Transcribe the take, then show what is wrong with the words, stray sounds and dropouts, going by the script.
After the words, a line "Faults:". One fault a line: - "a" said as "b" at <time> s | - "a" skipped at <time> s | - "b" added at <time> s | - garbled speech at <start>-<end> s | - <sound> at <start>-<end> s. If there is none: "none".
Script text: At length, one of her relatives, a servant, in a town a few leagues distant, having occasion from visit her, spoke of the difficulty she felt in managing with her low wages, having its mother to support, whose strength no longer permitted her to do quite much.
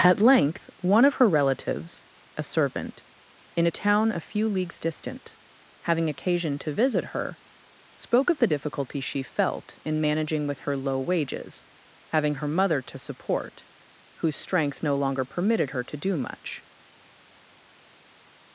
At length, one of her relatives, a servant, in a town a few leagues distant, having occasion to visit her, spoke of the difficulty she felt in managing with her low wages, having her mother to support, whose strength no longer permitted her to do much.
Faults:
- "from" said as "to" at 6.6 s
- "its" said as "her" at 12.3 s
- "quite" skipped at 16.2 s